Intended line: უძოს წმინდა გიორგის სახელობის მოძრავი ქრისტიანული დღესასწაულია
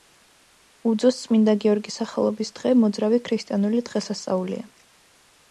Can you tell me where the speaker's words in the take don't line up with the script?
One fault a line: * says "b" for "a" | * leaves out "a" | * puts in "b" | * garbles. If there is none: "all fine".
* puts in "დღე"